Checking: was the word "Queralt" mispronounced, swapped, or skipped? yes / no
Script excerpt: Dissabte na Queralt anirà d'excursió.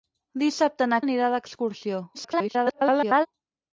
yes